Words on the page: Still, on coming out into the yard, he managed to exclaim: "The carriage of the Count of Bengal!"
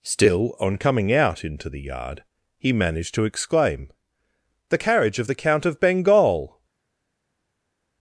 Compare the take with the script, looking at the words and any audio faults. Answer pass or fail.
pass